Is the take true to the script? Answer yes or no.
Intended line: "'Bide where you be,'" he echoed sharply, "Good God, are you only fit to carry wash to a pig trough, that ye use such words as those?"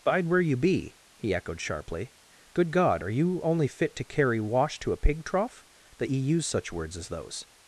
yes